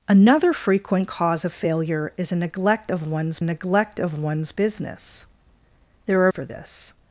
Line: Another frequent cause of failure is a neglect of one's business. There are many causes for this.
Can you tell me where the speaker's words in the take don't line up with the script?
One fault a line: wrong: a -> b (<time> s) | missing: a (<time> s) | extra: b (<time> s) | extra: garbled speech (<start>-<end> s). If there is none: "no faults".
extra: neglect of one's (3.4 s)
missing: many causes (6.3 s)